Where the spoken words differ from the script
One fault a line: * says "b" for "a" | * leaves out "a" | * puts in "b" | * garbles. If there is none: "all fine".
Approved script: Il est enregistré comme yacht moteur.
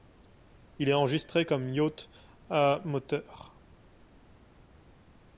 * puts in "à"